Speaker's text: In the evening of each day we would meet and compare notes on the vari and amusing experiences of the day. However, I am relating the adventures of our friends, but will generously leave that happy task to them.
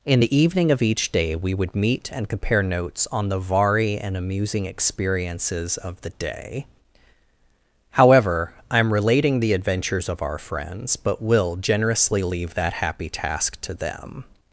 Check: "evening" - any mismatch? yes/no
no